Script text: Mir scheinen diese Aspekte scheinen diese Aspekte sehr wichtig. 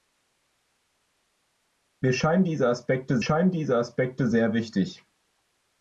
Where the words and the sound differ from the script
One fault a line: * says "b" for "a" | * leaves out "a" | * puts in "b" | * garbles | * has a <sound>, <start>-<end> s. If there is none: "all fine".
all fine